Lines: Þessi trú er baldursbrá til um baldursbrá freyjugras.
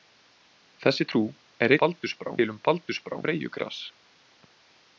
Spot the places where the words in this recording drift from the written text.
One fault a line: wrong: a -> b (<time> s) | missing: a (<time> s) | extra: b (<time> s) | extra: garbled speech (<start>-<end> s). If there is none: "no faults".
no faults